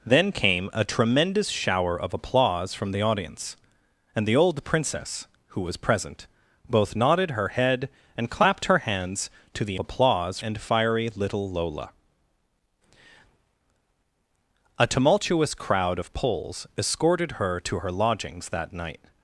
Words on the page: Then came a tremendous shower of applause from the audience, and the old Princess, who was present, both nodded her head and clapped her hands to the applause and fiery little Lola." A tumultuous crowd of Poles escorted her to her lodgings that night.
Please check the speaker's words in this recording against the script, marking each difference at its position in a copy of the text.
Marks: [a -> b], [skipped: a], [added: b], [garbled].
Then came a tremendous shower of applause from the audience, and the old Princess, who was present, both nodded her head and clapped her hands to the applause and fiery little Lola." A tumultuous crowd of Poles escorted her to her lodgings that night.